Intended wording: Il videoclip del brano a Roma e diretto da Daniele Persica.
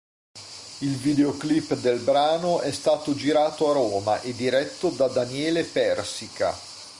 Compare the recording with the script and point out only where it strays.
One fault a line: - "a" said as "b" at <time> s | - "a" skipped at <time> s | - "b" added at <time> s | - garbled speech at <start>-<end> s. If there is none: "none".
- "è stato girato" added at 2.6 s